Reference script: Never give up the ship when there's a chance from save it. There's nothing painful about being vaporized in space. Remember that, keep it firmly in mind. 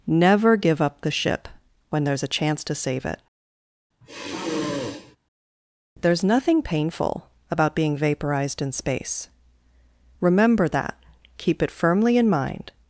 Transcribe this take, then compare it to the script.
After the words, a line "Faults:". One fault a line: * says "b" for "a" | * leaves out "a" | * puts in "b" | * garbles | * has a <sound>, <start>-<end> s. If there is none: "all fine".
Never give up the ship when there's a chance to save it. There's nothing painful about being vaporized in space. Remember that, keep it firmly in mind.
Faults:
* says "to" for "from"
* has a sigh, 4.0-5.2 s